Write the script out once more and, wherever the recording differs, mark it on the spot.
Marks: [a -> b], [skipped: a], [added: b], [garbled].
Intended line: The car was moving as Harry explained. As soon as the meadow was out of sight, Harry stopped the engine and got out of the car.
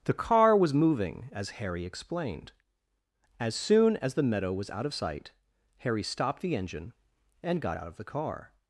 The car was moving as Harry explained. As soon as the meadow was out of sight, Harry stopped the engine and got out of the car.